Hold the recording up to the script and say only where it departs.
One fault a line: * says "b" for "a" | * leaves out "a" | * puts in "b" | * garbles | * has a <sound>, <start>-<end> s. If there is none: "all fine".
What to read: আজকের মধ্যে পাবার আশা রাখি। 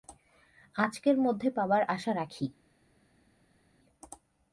all fine